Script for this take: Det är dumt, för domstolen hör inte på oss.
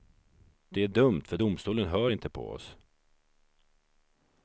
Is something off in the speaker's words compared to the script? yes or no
no